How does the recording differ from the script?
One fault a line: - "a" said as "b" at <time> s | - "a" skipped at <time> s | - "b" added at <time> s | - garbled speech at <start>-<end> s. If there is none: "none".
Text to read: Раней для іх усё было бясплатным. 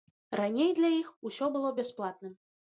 none